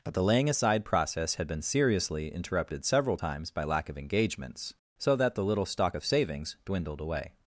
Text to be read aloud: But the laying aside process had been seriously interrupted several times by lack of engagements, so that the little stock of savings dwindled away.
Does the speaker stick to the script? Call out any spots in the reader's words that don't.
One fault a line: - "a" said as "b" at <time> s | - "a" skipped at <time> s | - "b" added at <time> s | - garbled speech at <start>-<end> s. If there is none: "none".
none